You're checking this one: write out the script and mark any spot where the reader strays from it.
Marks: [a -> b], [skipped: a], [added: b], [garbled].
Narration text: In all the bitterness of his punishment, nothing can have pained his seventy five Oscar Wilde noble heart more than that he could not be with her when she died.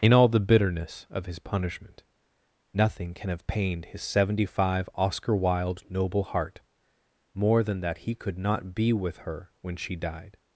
In all the bitterness of his punishment, nothing can have pained his seventy five Oscar Wilde noble heart more than that he could not be with her when she died.